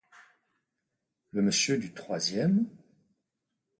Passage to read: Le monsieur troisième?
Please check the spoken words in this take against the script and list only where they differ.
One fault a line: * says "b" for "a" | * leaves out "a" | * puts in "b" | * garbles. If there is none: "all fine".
* puts in "du"